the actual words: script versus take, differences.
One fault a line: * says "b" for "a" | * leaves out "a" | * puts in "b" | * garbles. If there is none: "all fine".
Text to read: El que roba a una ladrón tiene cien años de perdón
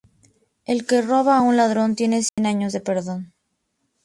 * says "un" for "una"